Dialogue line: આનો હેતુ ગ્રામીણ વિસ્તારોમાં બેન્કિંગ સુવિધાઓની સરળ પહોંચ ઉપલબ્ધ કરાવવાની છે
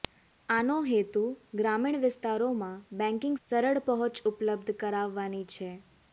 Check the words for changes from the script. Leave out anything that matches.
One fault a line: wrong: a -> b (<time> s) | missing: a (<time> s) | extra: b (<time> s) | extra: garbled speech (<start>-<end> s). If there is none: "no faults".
missing: સુવિધાઓની (3.4 s)